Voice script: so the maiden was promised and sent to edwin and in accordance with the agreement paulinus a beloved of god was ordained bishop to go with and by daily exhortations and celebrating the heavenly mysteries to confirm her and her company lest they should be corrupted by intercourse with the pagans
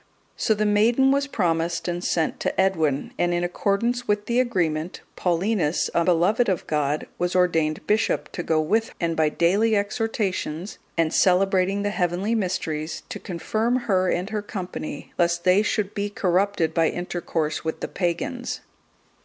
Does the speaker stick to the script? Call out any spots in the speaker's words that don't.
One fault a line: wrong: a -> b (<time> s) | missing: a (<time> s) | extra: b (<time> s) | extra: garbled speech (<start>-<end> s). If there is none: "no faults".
no faults